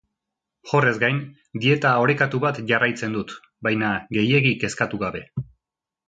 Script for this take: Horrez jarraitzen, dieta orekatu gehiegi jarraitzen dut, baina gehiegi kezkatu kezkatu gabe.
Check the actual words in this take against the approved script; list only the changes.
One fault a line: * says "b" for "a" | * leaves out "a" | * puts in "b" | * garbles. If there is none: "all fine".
* says "gain" for "jarraitzen"
* says "bat" for "gehiegi"
* leaves out "kezkatu"